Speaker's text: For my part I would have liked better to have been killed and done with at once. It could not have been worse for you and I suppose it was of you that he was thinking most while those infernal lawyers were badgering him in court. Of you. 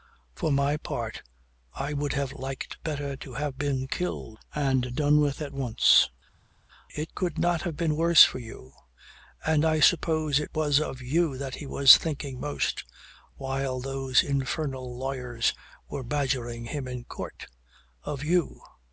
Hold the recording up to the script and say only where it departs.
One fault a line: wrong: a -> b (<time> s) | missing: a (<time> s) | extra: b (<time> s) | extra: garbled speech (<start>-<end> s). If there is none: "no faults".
no faults